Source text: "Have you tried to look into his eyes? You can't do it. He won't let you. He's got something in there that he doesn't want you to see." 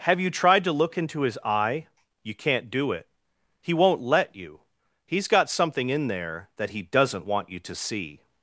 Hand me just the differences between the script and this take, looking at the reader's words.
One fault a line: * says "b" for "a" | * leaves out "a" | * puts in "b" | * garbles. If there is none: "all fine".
* says "eye" for "eyes"